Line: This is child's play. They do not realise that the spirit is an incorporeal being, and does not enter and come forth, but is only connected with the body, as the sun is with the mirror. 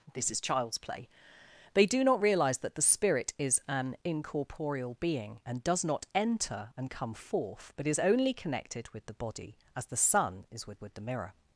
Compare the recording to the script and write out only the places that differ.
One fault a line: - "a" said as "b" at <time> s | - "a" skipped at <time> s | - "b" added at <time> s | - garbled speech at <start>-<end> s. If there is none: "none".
- "with" added at 10.8 s